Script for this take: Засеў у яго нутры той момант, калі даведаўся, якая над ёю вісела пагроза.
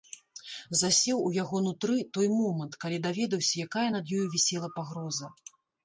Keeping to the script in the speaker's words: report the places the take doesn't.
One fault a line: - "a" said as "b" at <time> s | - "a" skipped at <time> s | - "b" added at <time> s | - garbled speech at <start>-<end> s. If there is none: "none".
none